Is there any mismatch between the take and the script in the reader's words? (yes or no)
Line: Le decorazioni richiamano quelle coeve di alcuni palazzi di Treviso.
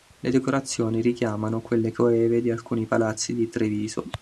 no